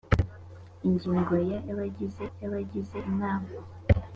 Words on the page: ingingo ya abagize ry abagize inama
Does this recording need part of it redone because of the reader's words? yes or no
no